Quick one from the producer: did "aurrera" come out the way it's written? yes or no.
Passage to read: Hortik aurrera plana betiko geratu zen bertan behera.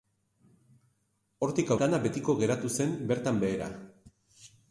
no